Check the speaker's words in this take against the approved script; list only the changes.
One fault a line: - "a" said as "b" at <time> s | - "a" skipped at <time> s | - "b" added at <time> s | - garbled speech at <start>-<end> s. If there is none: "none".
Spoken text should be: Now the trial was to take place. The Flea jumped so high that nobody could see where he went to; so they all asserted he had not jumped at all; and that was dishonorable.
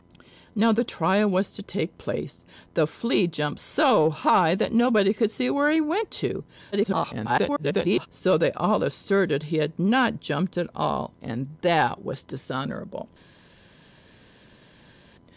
- garbled speech at 6.7-8.1 s